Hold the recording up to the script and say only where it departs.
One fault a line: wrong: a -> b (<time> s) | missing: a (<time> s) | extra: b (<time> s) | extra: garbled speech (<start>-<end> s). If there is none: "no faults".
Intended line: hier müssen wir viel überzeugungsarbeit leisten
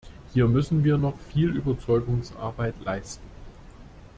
extra: noch (1.0 s)